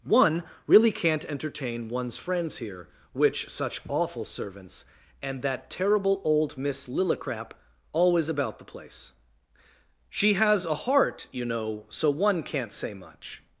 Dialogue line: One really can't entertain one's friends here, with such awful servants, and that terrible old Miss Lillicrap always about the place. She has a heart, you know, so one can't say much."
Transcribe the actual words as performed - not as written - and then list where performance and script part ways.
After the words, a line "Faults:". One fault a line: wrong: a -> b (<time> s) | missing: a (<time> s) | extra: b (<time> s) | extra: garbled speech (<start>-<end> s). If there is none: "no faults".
One really can't entertain one's friends here, which such awful servants, and that terrible old Miss Lillicrap always about the place. She has a heart, you know, so one can't say much."
Faults:
wrong: with -> which (3.1 s)